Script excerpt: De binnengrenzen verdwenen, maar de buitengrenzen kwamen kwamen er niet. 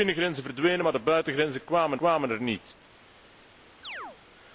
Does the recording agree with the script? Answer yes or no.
yes